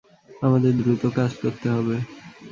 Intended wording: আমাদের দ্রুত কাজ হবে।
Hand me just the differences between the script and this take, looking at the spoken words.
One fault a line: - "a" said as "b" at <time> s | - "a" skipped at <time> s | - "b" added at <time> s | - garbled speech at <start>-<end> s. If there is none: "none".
- "করতে" added at 1.4 s